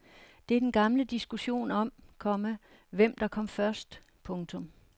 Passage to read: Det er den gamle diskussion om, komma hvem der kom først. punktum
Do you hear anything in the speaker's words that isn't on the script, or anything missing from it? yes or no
no